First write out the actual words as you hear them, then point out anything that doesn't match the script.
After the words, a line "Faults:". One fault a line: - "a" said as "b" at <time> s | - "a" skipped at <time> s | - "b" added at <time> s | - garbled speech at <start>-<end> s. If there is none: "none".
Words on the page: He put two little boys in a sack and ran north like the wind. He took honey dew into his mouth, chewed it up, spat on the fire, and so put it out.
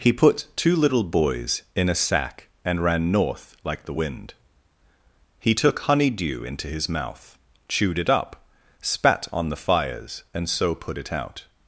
He put two little boys in a sack and ran north like the wind. He took honey dew into his mouth, chewed it up, spat on the fires, and so put it out.
Faults:
- "fire" said as "fires" at 9.6 s